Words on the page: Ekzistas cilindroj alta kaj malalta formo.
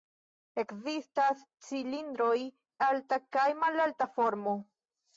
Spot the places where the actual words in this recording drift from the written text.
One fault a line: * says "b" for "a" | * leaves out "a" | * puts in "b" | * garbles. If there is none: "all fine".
all fine